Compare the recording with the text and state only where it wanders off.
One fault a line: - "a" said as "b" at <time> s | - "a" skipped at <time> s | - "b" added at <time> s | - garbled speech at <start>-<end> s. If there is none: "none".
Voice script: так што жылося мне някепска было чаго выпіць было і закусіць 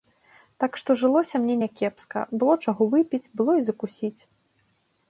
none